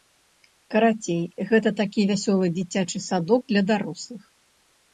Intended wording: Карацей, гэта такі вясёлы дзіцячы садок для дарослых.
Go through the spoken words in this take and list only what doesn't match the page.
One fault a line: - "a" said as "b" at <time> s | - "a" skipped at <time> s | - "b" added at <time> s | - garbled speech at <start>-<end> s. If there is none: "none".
none